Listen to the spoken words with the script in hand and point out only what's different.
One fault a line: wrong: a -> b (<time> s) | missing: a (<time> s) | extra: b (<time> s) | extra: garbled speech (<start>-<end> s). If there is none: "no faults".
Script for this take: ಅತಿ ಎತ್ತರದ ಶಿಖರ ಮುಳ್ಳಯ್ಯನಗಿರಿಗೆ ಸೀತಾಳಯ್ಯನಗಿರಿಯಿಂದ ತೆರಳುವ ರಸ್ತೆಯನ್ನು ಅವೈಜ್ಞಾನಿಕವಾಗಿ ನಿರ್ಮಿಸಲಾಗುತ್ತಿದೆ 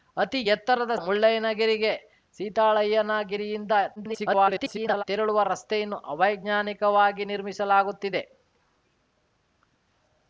missing: ಶಿಖರ (0.9 s)
extra: garbled speech (4.0-5.0 s)